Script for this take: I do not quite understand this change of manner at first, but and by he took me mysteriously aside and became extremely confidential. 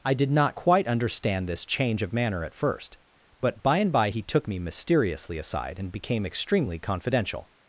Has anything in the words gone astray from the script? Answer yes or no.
yes